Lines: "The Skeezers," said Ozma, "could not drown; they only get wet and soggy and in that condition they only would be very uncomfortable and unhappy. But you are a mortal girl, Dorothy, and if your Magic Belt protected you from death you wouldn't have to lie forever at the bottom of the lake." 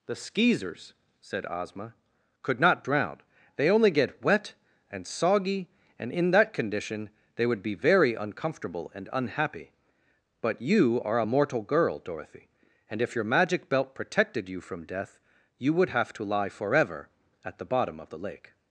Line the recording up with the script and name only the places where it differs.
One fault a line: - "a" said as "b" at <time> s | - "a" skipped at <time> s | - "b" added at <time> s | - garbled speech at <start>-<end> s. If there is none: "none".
- "only" skipped at 7.5 s
- "wouldn't" said as "would" at 15.7 s